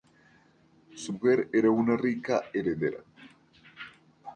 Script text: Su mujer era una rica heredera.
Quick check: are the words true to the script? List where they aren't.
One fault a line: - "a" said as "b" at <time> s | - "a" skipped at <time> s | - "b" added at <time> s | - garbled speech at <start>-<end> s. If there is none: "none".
none